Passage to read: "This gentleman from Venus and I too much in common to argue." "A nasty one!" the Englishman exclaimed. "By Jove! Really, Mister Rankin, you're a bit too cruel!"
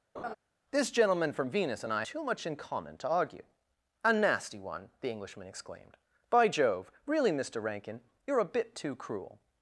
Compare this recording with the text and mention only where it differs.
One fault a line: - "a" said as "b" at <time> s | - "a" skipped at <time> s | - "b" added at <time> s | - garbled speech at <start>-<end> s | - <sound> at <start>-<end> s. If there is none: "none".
- laugh at 0.2-0.4 s